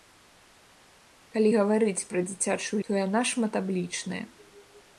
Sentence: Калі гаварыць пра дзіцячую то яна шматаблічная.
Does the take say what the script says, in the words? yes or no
yes